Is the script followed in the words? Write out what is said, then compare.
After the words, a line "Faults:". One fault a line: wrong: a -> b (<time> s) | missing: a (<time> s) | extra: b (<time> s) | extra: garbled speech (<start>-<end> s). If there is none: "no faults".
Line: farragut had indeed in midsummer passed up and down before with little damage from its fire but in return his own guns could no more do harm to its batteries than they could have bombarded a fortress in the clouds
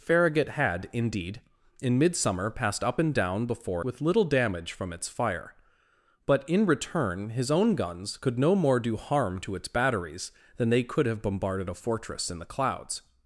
farragut had indeed in midsummer passed up and down before with little damage from its fire but in return his own guns could no more do harm to its batteries than they could have bombarded a fortress in the clouds
Faults:
no faults